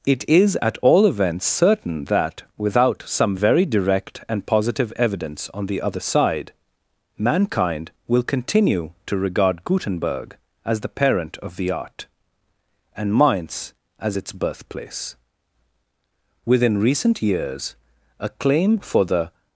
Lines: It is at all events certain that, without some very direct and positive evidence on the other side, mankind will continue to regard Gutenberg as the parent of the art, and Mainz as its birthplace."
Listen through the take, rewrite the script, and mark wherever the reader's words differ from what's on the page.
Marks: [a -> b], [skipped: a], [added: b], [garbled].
It is at all events certain that, without some very direct and positive evidence on the other side, mankind will continue to regard Gutenberg as the parent of the art, and Mainz as its birthplace." [added: Within recent years a claim for the]